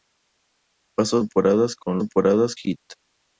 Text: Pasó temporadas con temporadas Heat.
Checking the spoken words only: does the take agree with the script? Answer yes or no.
yes